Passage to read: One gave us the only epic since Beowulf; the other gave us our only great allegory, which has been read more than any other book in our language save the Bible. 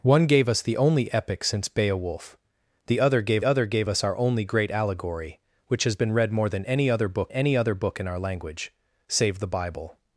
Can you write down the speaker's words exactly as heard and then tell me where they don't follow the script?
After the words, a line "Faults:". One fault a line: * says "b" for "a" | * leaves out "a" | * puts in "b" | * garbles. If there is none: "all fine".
One gave us the only epic since Beowulf; the other gave other gave us our only great allegory, which has been read more than any other book any other book in our language save the Bible.
Faults:
* puts in "other gave"
* puts in "any other book"